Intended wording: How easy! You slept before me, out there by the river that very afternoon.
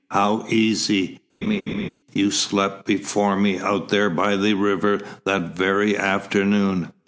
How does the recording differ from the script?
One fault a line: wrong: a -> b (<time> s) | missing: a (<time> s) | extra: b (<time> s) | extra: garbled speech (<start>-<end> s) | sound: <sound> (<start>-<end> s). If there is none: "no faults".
sound: laugh (1.4-1.9 s)